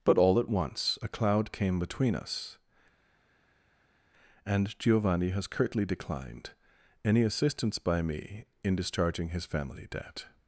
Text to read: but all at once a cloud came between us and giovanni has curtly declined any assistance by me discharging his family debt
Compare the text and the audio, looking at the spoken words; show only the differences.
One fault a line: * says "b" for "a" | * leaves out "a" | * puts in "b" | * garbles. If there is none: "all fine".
* puts in "in"